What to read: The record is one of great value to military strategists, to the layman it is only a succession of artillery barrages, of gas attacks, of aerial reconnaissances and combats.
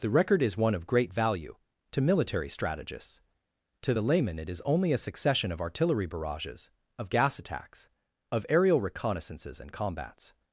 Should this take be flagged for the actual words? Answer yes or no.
no